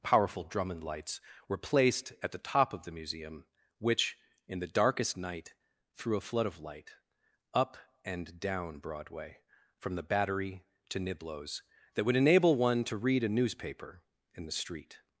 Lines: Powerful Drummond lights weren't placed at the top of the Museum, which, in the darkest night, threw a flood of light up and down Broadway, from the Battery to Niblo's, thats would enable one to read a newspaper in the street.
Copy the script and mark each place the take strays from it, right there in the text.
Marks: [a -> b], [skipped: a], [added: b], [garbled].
Powerful Drummond lights [weren't -> were] placed at the top of the Museum, which, in the darkest night, threw a flood of light up and down Broadway, from the Battery to Niblo's, [thats -> that] would enable one to read a newspaper in the street.